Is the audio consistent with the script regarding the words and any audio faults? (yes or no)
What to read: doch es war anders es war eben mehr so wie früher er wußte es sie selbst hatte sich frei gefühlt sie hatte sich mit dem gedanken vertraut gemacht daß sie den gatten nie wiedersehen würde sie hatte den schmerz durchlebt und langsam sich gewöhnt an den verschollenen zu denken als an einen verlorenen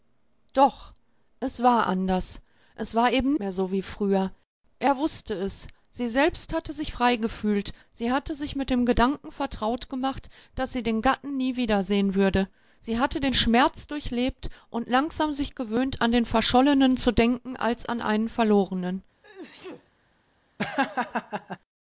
no